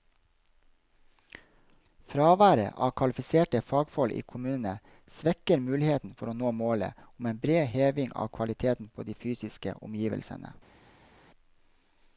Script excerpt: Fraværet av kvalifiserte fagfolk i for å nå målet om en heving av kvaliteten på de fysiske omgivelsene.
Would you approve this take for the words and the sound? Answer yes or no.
no